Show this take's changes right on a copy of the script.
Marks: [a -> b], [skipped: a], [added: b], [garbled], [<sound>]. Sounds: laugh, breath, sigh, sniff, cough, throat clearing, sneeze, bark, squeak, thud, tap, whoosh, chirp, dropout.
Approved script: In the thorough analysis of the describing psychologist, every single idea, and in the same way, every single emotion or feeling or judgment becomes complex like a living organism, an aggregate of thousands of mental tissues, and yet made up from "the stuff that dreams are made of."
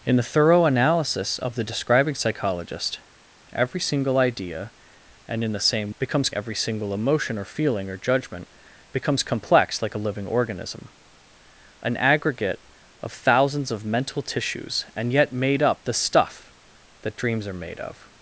In the thorough analysis of the describing psychologist, every single idea, and in the same [way, -> becomes] every single emotion or feeling or judgment becomes complex like a living organism, an aggregate of thousands of mental tissues, and yet made up [skipped: from] "the stuff that dreams are made of."